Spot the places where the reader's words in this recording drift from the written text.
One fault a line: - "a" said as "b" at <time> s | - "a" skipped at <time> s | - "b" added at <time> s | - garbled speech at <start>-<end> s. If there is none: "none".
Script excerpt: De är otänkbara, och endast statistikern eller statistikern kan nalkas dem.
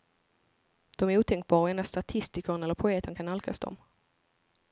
- "statistikern" said as "poeten" at 2.8 s